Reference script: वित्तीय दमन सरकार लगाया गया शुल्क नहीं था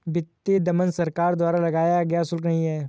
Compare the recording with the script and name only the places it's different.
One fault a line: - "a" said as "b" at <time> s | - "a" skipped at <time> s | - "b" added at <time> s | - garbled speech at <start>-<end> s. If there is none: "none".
- "द्वारा" added at 1.4 s
- "था" said as "है" at 2.7 s